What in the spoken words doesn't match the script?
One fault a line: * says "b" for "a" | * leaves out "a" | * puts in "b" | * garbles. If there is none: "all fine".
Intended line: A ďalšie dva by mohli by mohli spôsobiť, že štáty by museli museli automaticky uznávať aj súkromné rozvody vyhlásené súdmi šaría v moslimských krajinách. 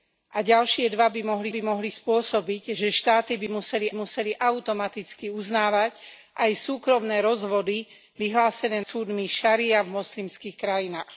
all fine